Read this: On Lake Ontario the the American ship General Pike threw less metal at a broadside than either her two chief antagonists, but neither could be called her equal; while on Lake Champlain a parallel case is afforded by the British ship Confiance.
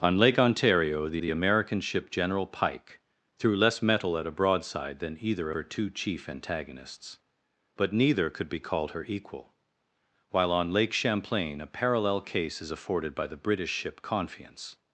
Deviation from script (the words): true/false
false